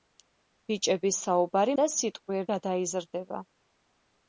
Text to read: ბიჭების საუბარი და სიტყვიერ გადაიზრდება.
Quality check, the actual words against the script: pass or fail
pass